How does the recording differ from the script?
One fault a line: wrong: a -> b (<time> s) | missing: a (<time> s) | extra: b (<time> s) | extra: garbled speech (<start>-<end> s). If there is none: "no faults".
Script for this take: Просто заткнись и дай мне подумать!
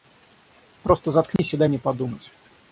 no faults